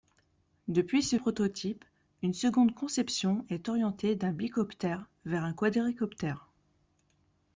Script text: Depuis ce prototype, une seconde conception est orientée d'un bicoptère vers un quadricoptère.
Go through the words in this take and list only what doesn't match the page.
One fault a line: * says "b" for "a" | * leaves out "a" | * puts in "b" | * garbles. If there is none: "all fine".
all fine